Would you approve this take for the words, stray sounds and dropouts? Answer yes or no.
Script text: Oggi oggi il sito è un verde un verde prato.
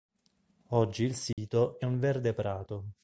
no